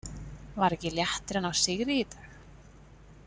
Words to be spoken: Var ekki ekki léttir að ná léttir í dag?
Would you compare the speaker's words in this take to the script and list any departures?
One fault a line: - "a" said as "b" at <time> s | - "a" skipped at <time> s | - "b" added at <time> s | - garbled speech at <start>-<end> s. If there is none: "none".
- "ekki" skipped at 0.9 s
- "léttir" said as "sigri" at 1.6 s